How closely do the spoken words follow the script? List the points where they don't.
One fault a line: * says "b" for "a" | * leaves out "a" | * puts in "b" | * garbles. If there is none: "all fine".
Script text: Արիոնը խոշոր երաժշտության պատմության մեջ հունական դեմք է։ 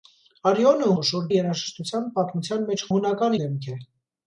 all fine